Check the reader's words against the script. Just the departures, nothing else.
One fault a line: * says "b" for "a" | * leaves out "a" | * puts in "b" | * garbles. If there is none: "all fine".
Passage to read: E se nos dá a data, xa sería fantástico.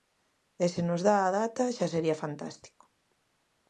all fine